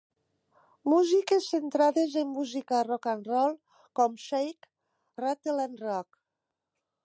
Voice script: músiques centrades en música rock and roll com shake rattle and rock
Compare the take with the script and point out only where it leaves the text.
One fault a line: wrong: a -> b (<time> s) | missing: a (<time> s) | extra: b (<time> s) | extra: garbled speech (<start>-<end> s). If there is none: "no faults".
no faults